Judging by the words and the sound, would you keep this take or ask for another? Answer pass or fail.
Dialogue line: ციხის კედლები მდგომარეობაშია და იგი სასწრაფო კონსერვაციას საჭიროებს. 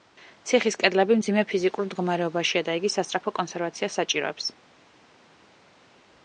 fail